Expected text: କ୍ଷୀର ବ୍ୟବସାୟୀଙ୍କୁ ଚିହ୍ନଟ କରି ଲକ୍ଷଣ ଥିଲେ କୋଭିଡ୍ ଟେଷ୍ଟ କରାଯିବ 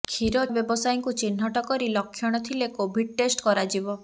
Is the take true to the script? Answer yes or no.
yes